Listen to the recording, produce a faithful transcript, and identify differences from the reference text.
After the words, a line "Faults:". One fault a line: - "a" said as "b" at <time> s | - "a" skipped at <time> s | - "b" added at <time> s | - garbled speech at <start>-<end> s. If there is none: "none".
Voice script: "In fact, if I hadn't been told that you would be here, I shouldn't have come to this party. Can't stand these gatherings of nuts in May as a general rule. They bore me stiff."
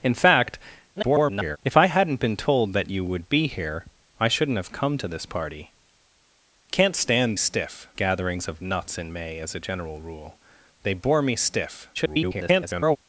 "In fact, [garbled] if I hadn't been told that you would be here, I shouldn't have come to this party. Can't stand stiff gatherings of nuts in May as a general rule. They bore me stiff." [garbled]
Faults:
- garbled speech at 0.9-1.6 s
- "these" said as "stiff" at 7.4 s
- garbled speech at 11.9-13.0 s